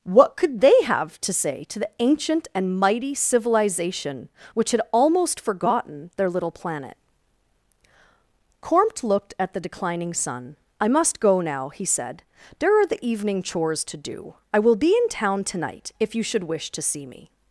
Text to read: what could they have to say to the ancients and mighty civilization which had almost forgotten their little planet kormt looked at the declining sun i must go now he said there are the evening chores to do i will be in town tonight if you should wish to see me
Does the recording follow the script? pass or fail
fail